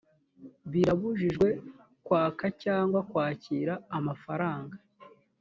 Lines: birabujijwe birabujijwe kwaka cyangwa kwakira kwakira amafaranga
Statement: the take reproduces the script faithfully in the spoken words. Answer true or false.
false